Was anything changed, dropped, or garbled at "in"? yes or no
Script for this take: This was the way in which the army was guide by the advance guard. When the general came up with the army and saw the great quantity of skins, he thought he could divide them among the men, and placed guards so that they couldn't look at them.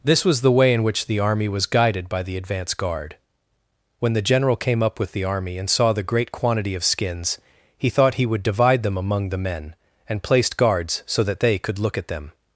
no